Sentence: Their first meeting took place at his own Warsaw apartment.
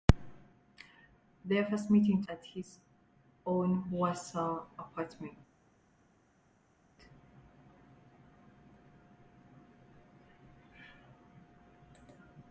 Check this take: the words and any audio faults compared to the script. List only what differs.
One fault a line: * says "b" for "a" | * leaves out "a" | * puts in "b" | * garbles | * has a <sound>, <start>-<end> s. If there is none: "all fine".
* leaves out "took place"